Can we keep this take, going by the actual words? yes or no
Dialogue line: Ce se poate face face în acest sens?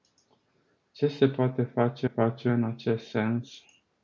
yes